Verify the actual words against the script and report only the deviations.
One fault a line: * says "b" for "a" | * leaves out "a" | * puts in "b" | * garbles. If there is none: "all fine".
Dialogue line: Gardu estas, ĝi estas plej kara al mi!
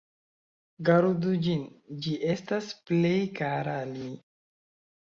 * says "ĝin" for "estas"